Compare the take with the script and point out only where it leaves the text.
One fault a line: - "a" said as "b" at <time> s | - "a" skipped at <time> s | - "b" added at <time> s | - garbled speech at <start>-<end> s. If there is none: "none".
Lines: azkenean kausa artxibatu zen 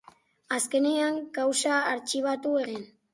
none